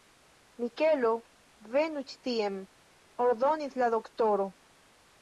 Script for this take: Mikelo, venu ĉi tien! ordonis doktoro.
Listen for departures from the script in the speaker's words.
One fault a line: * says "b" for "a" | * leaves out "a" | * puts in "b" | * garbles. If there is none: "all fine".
* puts in "la"